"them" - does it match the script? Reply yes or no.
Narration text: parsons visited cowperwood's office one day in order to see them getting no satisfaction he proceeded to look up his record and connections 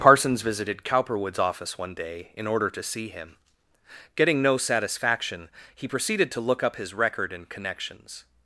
no